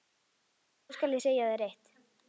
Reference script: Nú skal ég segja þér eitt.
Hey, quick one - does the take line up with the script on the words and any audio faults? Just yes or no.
yes